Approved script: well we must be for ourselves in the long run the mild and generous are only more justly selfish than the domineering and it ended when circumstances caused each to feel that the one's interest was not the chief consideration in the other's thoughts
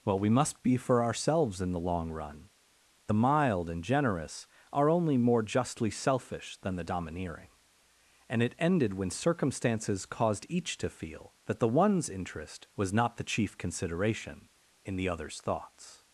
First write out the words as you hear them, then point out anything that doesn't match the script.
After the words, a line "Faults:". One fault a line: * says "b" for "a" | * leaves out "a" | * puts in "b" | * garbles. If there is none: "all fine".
well we must be for ourselves in the long run the mild and generous are only more justly selfish than the domineering and it ended when circumstances caused each to feel that the one's interest was not the chief consideration in the other's thoughts
Faults:
all fine